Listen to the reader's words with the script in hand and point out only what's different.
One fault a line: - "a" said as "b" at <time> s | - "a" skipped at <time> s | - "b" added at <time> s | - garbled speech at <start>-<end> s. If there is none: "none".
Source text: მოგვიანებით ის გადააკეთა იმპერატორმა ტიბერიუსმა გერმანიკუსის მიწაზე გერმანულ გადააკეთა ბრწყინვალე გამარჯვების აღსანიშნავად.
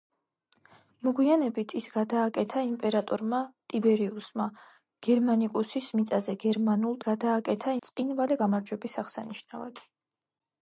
none